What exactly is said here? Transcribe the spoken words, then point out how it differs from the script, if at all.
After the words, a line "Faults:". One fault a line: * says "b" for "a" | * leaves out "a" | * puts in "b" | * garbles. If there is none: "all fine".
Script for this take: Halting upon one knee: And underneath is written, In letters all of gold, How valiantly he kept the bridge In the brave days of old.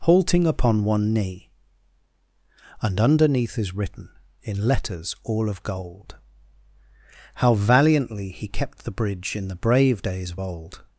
Halting upon one knee: And underneath is written, In letters all of gold, How valiantly he kept the bridge In the brave days of old.
Faults:
all fine